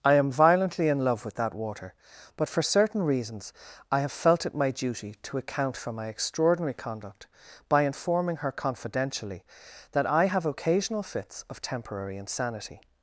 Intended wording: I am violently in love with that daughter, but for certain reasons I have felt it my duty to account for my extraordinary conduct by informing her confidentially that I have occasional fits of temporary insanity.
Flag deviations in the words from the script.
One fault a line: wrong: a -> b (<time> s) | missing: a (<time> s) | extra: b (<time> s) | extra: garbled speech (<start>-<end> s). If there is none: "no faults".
wrong: daughter -> water (1.5 s)